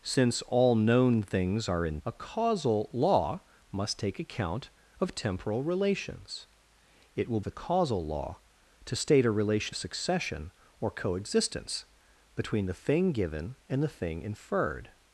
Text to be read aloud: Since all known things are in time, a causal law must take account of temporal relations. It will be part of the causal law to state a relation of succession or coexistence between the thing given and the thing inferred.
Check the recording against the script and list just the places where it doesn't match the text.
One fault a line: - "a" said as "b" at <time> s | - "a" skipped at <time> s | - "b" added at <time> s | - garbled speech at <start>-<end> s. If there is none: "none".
- "time" skipped at 2.0 s
- "be part of" skipped at 7.4 s
- "of" skipped at 9.8 s